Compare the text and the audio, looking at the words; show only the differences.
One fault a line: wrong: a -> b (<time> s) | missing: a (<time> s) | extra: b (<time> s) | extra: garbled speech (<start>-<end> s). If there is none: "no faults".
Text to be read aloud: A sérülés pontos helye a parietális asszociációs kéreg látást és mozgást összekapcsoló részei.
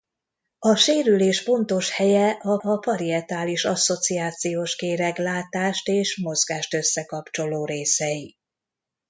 extra: a (2.6 s)